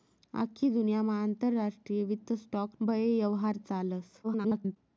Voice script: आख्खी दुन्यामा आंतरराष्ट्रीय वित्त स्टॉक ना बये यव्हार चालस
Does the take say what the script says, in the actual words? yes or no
no